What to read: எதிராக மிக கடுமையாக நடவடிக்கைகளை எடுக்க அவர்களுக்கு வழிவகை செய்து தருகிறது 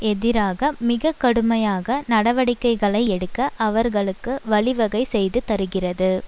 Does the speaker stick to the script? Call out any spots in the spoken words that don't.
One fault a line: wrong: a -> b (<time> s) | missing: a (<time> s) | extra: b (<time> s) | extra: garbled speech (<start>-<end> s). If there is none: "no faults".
no faults